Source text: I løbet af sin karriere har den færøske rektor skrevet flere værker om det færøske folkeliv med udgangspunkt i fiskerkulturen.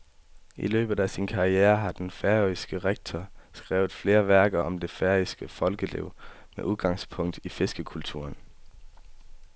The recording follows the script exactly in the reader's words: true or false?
true